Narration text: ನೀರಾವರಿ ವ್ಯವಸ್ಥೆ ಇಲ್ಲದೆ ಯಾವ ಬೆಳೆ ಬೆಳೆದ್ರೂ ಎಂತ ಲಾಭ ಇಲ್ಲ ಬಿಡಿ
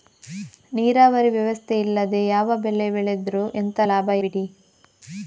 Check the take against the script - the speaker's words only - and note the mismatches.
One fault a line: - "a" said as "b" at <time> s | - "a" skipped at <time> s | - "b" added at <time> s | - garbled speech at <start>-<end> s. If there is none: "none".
- "ಇಲ್ಲ" skipped at 4.1 s